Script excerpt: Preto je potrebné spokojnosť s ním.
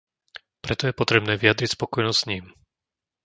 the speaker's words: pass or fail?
fail